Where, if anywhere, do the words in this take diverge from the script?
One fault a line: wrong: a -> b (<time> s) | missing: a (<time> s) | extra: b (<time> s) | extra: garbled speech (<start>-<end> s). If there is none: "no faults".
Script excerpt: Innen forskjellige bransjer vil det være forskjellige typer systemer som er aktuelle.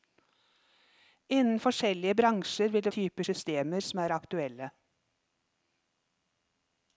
missing: være forskjellige (2.9 s)